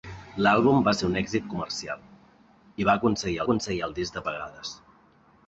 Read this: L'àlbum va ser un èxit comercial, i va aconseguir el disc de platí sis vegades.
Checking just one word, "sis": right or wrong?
wrong